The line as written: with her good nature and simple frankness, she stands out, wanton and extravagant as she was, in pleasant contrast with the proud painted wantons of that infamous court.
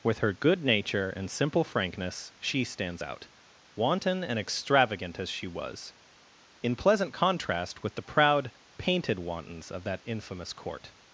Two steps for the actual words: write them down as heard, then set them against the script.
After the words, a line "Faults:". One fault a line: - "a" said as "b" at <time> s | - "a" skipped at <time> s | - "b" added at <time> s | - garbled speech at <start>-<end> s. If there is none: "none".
with her good nature and simple frankness, she stands out, wanton and extravagant as she was, in pleasant contrast with the proud painted wantons of that infamous court.
Faults:
none